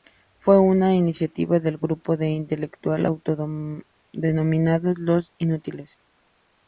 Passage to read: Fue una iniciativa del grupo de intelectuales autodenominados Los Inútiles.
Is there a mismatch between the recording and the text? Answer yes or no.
no